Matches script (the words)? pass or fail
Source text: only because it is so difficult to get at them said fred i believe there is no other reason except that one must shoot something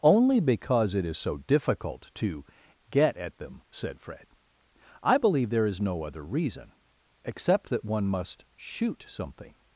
pass